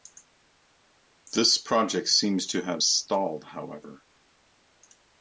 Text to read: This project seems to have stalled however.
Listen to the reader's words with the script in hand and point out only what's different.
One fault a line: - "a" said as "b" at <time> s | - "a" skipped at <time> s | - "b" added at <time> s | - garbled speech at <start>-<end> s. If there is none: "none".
none